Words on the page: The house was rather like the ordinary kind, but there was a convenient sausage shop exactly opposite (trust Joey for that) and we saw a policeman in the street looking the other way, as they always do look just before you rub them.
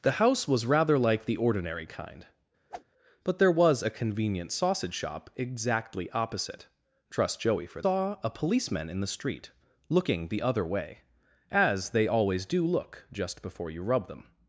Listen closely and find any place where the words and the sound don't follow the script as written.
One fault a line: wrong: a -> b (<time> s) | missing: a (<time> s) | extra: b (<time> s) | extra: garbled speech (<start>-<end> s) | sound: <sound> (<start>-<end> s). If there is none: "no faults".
sound: whoosh (2.7-2.8 s)
missing: that and we (7.8 s)